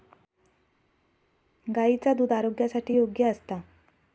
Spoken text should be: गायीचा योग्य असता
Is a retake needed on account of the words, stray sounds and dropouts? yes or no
yes